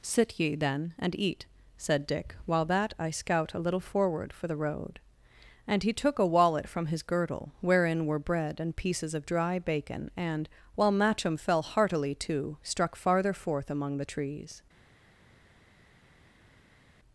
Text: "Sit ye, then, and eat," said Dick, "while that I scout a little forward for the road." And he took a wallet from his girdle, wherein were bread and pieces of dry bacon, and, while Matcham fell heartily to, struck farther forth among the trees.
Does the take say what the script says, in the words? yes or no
yes